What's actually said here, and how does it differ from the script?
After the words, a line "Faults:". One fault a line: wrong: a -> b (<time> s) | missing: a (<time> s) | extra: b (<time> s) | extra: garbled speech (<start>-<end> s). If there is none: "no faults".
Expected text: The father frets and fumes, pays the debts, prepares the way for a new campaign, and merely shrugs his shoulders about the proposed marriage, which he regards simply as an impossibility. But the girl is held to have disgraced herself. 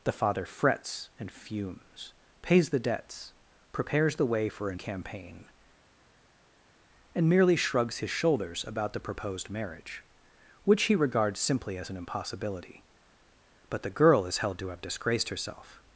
The father frets and fumes, pays the debts, prepares the way for a campaign, and merely shrugs his shoulders about the proposed marriage, which he regards simply as an impossibility. But the girl is held to have disgraced herself.
Faults:
missing: new (4.8 s)